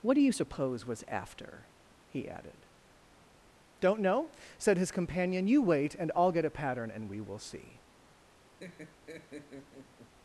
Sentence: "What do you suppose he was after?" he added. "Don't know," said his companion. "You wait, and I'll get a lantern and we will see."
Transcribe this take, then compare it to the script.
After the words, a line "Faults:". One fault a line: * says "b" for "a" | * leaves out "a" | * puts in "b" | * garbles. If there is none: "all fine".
"What do you suppose was after?" he added. "Don't know," said his companion. "You wait, and I'll get a pattern and we will see."
Faults:
* leaves out "he"
* says "pattern" for "lantern"